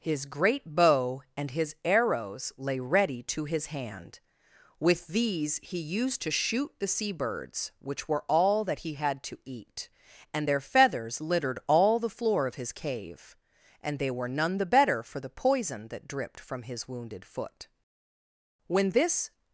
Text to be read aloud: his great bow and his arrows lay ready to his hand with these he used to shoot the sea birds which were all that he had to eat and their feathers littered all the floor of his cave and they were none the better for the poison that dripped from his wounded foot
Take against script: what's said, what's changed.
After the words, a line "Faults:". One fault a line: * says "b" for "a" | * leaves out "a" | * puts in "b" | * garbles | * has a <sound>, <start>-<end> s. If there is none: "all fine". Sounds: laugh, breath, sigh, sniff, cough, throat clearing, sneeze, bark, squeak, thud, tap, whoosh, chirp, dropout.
his great bow and his arrows lay ready to his hand with these he used to shoot the sea birds which were all that he had to eat and their feathers littered all the floor of his cave and they were none the better for the poison that dripped from his wounded foot when this
Faults:
* puts in "when this"